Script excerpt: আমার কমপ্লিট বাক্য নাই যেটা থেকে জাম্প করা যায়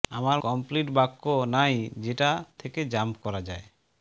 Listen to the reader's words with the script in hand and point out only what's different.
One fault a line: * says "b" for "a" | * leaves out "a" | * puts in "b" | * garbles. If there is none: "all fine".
all fine